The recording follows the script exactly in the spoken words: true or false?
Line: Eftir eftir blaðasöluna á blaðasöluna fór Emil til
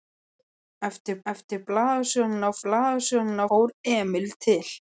true